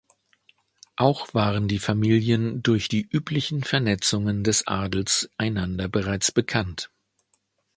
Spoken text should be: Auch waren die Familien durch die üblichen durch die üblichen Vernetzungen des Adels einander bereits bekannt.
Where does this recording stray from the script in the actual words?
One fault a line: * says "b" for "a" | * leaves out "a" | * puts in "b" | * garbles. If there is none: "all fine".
* leaves out "durch die üblichen"